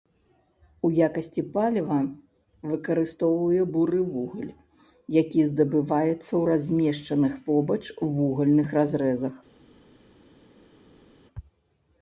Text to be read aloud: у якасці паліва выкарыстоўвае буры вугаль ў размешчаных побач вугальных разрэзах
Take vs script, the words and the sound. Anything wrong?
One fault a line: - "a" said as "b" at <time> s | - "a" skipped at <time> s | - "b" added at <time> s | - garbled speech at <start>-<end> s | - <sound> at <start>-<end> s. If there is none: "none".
- "які здабываецца" added at 5.2 s